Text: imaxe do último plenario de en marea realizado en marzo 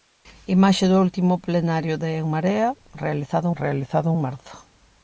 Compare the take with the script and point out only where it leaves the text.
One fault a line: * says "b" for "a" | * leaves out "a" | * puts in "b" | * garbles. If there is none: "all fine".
* puts in "realizado"